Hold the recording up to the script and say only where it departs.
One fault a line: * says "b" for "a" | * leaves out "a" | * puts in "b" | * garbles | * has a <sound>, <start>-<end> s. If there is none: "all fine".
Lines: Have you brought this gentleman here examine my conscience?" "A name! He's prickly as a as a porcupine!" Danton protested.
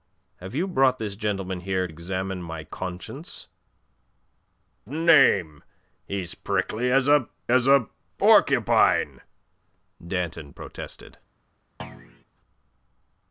* has a thud, 11.8-12.2 s